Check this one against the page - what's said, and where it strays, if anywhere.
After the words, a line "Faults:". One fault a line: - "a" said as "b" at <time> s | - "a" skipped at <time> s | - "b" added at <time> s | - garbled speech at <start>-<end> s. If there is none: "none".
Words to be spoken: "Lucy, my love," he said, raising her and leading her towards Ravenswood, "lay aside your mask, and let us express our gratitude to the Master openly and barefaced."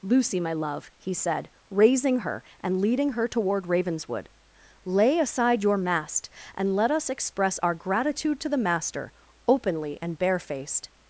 "Lucy, my love," he said, raising her and leading her toward Ravenswood, "lay aside your mast, and let us express our gratitude to the Master openly and barefaced."
Faults:
- "towards" said as "toward" at 3.3 s
- "mask" said as "mast" at 5.8 s